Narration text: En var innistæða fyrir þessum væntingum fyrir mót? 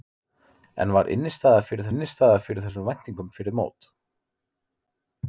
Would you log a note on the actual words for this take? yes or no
yes